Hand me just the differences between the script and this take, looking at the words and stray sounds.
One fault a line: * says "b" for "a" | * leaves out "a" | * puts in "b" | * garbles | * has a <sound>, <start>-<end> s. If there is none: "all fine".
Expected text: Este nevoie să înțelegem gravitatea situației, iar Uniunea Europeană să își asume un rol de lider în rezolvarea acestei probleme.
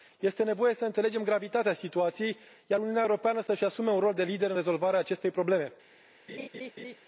* has a laugh, 6.3-7.0 s